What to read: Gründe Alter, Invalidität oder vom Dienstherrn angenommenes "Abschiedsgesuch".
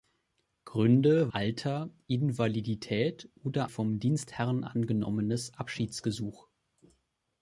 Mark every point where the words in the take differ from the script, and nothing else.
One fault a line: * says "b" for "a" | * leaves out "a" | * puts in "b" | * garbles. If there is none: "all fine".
all fine